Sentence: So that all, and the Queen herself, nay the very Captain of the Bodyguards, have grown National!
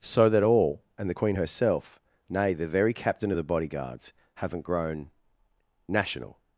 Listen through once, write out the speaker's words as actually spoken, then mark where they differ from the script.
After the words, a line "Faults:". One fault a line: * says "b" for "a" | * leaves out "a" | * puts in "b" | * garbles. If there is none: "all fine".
So that all, and the Queen herself, nay the very Captain of the Bodyguards, haven't grown National!
Faults:
* says "haven't" for "have"